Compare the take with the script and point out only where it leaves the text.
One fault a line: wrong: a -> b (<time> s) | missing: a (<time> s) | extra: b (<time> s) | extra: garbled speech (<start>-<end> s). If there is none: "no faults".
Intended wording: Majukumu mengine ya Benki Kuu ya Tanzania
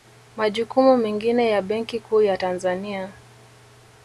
no faults